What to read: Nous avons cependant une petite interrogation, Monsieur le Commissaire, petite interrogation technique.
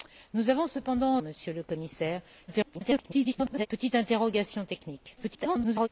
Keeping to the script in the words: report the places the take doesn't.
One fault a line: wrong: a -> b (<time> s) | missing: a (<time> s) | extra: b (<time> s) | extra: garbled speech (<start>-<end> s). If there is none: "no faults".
missing: une petite interrogation (1.2 s)
extra: garbled speech (2.5-3.7 s)
extra: garbled speech (5.2-5.9 s)